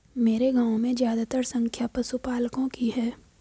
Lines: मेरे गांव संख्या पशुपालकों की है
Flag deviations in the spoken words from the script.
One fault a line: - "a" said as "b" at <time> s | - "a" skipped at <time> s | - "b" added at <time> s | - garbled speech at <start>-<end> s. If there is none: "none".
- "में ज्यादातर" added at 0.8 s